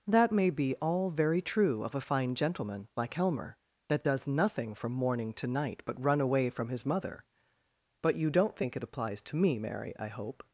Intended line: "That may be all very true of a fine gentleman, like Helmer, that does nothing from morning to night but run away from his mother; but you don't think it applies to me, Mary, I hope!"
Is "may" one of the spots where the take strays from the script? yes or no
no